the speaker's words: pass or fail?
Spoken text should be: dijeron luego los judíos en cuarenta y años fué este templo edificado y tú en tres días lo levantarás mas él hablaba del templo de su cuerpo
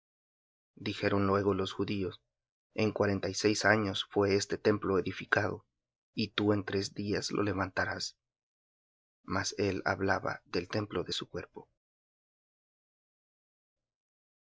fail